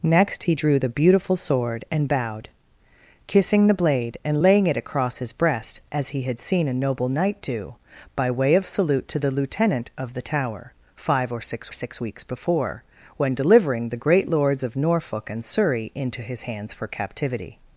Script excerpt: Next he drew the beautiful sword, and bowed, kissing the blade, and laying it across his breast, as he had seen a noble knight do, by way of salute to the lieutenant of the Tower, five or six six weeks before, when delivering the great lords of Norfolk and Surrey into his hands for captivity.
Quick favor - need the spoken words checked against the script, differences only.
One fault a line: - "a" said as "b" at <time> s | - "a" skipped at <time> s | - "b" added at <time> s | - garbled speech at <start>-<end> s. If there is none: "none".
none